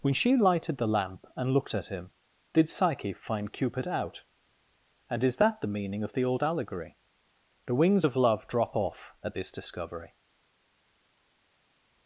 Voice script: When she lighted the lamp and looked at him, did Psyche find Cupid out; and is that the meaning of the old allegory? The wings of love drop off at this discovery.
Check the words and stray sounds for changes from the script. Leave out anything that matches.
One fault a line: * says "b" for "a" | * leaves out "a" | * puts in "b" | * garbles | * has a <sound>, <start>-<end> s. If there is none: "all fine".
all fine